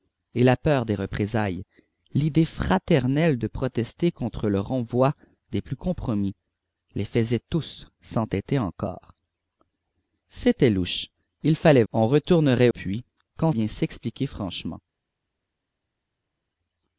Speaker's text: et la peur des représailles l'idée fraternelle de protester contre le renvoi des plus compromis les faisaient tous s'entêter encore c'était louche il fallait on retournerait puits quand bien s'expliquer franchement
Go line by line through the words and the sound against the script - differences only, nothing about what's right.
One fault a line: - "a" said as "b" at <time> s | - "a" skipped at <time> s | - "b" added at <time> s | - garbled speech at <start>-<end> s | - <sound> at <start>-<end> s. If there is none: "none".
none